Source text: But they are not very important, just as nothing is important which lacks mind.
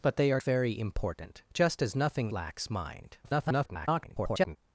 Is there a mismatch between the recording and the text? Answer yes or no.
yes